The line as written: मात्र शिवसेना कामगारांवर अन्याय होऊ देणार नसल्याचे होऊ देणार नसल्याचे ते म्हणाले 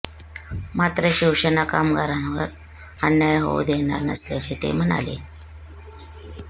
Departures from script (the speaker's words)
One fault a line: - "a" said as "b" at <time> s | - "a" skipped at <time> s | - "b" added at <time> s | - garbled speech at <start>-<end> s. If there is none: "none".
- "होऊ देणार नसल्याचे" skipped at 4.5 s